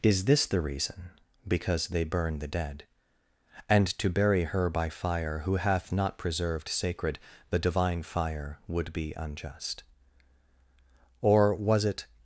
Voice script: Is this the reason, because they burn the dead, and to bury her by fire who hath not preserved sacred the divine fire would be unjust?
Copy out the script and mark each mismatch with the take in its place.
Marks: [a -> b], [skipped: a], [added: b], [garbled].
Is this the reason, because they burn the dead, and to bury her by fire who hath not preserved sacred the divine fire would be unjust? [added: Or was it]